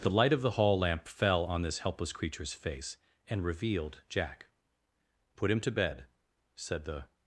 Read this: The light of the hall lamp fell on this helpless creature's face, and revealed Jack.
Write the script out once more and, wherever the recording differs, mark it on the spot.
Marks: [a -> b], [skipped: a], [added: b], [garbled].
The light of the hall lamp fell on this helpless creature's face, and revealed Jack. [added: Put him to bed said the]